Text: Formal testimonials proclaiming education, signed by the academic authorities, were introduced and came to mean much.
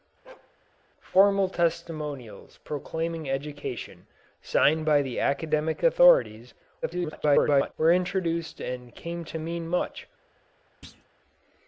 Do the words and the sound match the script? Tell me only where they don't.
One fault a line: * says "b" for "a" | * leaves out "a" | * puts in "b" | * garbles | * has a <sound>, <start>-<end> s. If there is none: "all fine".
* has a bark, 0.2-0.5 s
* garbles
* has a thud, 10.8-11.1 s